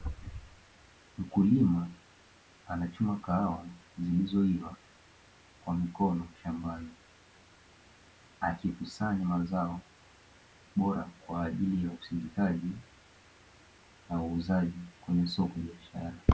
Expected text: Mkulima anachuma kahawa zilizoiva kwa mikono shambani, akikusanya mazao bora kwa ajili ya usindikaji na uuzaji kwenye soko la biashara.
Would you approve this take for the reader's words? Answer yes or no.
no